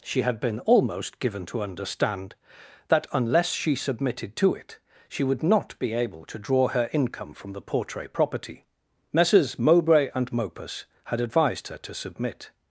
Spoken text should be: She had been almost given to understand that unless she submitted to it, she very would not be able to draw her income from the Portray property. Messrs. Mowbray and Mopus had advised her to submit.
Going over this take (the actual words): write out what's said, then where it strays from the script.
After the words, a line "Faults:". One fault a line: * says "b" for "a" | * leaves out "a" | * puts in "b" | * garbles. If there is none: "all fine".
She had been almost given to understand that unless she submitted to it, she would not be able to draw her income from the Portray property. Messrs. Mowbray and Mopus had advised her to submit.
Faults:
* leaves out "very"